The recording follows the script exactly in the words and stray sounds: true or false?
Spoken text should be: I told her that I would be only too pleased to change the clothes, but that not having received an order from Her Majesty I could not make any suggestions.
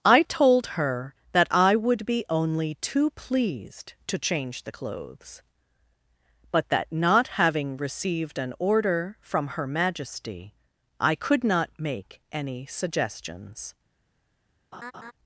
false